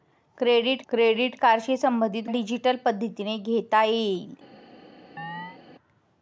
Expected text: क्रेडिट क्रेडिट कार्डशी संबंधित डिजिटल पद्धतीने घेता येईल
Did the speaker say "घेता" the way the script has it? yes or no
yes